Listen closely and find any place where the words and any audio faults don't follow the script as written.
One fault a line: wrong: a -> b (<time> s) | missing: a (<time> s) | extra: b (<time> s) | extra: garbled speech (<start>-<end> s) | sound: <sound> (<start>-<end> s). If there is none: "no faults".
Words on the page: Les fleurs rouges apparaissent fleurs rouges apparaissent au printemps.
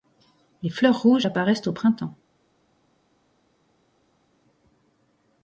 missing: fleurs rouges apparaissent (1.7 s)